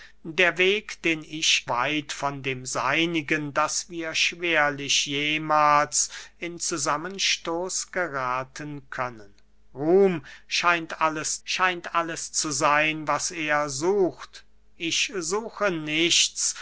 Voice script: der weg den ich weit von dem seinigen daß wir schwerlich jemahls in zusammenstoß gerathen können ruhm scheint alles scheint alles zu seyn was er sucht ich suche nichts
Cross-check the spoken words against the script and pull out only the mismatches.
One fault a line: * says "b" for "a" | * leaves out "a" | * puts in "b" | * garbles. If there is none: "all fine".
all fine